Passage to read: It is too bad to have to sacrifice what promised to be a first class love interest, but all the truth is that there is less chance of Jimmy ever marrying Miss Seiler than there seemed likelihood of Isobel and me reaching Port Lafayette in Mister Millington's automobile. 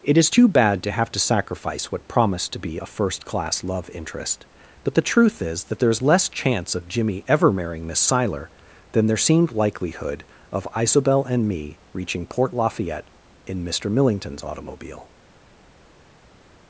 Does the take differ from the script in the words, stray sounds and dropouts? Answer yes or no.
yes